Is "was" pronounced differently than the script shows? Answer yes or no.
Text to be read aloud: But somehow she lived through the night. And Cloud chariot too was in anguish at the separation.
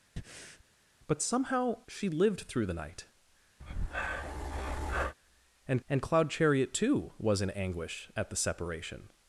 no